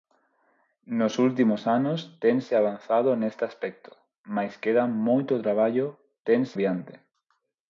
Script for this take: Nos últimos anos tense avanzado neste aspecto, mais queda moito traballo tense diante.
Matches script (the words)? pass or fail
pass